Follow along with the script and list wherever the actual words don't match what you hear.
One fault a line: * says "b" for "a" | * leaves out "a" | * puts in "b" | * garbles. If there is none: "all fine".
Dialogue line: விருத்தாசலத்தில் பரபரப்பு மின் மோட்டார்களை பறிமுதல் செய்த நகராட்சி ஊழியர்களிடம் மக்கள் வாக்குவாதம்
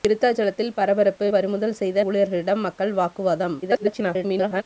* leaves out "மின் மோட்டார்களை"
* leaves out "நகராட்சி"
* garbles